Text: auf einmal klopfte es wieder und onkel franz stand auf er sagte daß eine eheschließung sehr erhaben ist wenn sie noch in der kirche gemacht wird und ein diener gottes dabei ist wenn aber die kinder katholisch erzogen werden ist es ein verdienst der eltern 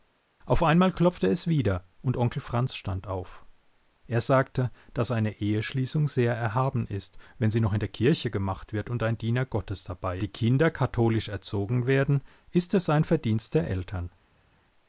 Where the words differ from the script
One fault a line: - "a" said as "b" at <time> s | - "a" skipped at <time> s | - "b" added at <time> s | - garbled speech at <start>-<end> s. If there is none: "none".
- "ist wenn aber" skipped at 10.2 s